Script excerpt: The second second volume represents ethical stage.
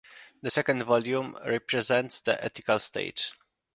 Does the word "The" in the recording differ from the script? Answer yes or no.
no